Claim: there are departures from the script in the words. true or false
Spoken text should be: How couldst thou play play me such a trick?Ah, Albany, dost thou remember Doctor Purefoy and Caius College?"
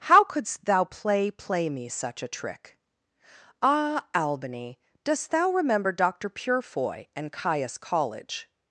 false